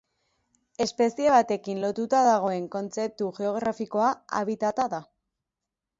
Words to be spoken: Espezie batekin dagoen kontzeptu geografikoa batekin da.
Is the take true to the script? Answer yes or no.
no